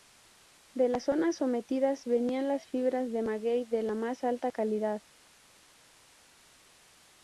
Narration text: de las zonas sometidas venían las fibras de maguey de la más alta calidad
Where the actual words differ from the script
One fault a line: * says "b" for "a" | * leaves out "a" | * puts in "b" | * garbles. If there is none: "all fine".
all fine